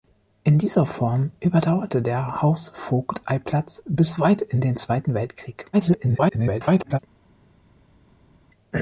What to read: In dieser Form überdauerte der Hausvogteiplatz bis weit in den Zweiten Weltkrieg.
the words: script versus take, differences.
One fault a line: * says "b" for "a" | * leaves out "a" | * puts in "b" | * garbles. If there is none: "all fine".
* garbles